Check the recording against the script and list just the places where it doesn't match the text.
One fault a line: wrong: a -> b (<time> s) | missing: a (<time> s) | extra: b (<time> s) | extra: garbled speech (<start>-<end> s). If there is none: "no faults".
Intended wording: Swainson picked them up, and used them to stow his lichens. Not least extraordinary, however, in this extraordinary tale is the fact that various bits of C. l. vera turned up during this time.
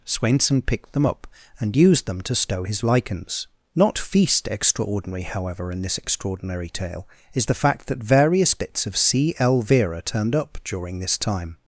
wrong: least -> feast (4.0 s)